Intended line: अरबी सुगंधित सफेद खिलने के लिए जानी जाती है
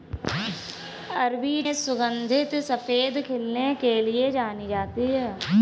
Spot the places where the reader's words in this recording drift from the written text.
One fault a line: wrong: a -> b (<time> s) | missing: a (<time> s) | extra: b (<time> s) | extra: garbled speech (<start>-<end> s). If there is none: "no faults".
no faults